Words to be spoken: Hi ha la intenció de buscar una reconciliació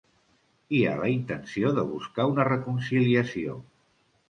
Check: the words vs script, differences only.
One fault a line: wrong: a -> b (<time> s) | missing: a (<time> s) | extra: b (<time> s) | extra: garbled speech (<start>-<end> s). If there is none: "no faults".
no faults